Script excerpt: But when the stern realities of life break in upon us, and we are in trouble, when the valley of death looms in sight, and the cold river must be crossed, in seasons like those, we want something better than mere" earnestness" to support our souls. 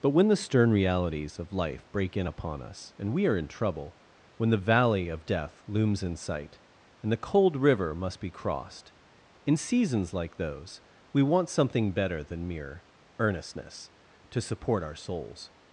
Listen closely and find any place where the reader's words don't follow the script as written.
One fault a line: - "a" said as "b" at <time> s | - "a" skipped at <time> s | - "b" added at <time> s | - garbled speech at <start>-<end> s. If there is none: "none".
none